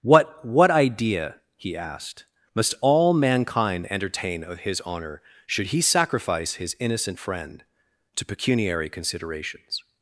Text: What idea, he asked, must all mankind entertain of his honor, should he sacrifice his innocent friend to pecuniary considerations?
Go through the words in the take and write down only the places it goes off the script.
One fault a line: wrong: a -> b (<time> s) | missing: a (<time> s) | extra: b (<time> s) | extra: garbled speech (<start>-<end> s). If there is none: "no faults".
extra: what (0.4 s)